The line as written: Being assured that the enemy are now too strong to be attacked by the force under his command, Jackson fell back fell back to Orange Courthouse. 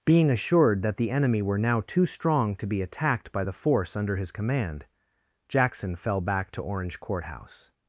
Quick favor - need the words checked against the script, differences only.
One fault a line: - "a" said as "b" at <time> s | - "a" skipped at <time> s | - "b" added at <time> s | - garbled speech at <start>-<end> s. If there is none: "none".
- "are" said as "were" at 1.4 s
- "fell back" skipped at 6.5 s